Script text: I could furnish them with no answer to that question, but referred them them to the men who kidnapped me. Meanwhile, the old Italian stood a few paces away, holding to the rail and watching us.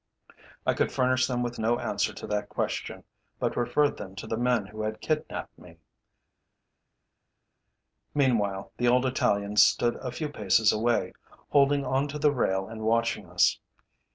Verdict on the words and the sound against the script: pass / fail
fail